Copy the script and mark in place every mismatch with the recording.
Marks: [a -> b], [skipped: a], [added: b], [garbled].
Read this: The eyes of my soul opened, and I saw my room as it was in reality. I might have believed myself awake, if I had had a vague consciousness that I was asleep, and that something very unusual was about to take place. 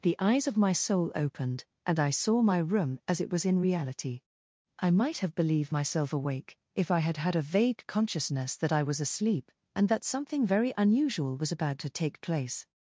The eyes of my soul opened, and I saw my room as it was in reality. I might have believed myself awake, if I had had a vague consciousness that I was asleep, and that something very unusual was about to take place.